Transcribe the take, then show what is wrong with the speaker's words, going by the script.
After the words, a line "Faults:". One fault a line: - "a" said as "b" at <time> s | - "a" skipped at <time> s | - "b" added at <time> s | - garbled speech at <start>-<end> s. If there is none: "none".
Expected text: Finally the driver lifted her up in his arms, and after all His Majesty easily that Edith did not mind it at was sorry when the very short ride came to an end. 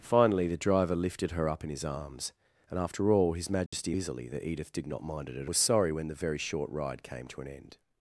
Finally the driver lifted her up in his arms, and after all His Majesty easily that Edith did not mind it at was sorry when the very short ride came to an end.
Faults:
none